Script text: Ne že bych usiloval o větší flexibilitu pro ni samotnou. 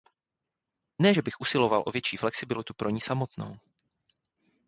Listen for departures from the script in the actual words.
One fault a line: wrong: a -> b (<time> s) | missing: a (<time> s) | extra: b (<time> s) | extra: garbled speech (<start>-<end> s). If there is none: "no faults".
no faults